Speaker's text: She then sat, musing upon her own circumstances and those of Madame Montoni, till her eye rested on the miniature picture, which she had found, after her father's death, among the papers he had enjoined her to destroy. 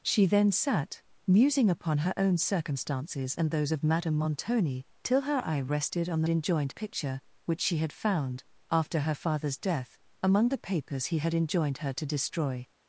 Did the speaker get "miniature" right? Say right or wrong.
wrong